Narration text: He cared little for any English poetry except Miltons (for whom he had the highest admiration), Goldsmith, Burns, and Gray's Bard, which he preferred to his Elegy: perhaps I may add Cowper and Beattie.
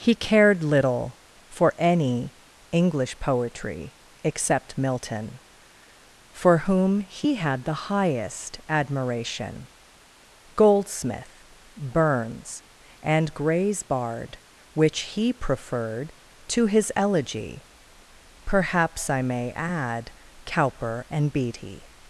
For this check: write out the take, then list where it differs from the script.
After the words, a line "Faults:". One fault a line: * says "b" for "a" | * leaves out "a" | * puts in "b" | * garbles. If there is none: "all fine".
He cared little for any English poetry except Milton (for whom he had the highest admiration), Goldsmith, Burns, and Gray's Bard, which he preferred to his Elegy: perhaps I may add Cowper and Beattie.
Faults:
* says "Milton" for "Miltons"